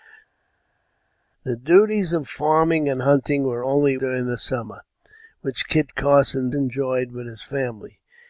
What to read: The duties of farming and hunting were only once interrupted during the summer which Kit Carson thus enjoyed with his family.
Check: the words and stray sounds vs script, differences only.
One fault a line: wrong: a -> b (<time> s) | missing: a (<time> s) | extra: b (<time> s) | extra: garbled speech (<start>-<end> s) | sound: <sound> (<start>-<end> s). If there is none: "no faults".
missing: once interrupted (4.0 s)
missing: thus (6.5 s)